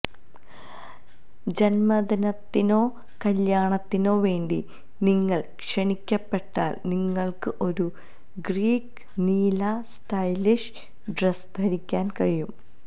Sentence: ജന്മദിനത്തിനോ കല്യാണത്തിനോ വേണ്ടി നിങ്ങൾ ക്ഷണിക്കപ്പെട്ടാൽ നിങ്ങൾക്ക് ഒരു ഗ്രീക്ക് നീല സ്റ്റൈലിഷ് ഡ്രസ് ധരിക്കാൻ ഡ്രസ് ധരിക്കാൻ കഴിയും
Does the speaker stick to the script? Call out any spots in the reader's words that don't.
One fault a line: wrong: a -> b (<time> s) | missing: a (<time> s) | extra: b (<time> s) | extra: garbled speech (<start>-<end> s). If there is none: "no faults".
missing: ഡ്രസ് ധരിക്കാൻ (12.1 s)